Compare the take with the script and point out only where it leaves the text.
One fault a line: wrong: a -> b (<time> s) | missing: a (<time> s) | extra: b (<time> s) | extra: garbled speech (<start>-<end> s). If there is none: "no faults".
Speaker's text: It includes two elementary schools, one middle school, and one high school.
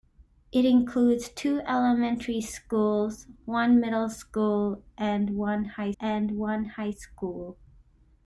extra: and one high (6.0 s)